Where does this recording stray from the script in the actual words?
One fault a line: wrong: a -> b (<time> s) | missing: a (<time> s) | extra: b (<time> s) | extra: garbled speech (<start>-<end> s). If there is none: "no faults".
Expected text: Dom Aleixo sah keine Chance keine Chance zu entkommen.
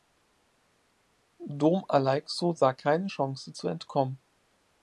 missing: keine Chance (3.6 s)